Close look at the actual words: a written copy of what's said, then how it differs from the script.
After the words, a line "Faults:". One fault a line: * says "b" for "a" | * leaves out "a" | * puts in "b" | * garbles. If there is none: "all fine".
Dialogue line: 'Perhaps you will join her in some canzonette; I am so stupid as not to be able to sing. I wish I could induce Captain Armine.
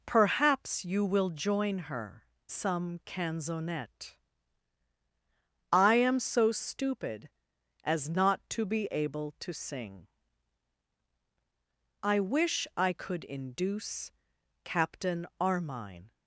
'Perhaps you will join her some canzonette; I am so stupid as not to be able to sing. I wish I could induce Captain Armine.
Faults:
* leaves out "in"